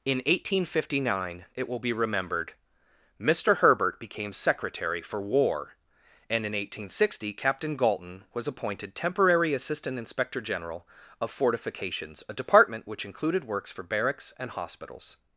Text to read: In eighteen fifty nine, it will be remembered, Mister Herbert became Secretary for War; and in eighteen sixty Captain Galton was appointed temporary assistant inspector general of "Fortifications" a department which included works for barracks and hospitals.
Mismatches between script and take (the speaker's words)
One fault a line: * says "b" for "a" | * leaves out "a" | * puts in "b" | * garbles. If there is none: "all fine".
all fine